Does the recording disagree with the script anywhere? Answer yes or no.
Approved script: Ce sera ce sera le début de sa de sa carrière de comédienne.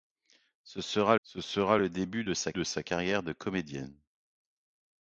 no